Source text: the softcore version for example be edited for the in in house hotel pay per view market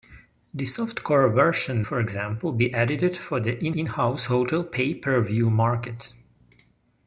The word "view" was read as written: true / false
true